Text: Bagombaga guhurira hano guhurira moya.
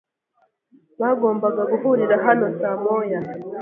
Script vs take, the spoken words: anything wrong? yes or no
yes